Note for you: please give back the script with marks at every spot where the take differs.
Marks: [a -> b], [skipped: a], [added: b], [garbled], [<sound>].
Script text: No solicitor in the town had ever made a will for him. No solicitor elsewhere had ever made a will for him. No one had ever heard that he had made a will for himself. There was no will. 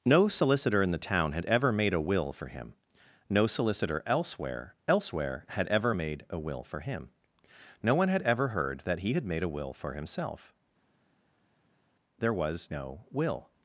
No solicitor in the town had ever made a will for him. No solicitor elsewhere [added: elsewhere] had ever made a will for him. No one had ever heard that he had made a will for himself. There was no will.